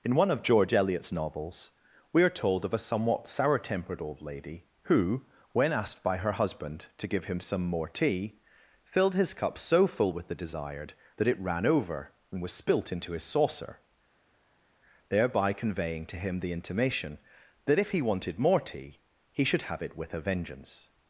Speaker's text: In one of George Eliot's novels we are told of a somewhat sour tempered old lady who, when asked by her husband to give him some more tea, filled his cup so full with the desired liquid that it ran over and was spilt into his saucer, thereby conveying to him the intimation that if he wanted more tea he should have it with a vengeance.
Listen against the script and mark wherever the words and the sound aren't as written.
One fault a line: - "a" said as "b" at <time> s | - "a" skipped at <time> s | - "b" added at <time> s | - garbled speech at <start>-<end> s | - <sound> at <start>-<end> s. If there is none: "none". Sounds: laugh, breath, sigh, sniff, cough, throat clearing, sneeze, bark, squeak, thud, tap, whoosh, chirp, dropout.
- "liquid" skipped at 10.9 s